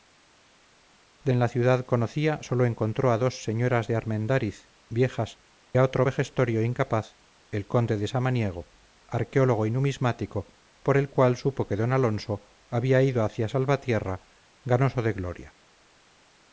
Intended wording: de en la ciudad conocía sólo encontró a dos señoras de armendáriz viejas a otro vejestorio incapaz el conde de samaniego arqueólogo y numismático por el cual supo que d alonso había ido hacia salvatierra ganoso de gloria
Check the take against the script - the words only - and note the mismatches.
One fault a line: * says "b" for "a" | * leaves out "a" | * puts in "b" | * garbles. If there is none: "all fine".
all fine